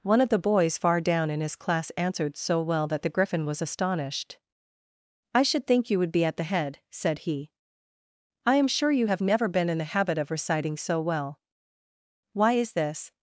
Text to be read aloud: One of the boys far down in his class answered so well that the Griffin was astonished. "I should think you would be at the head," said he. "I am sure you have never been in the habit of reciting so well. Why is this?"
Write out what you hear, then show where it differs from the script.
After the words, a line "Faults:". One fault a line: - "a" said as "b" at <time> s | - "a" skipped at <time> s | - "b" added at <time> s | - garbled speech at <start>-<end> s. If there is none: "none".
One of the boys far down in his class answered so well that the Griffin was astonished. "I should think you would be at the head," said he. "I am sure you have never been in the habit of reciting so well. Why is this?"
Faults:
none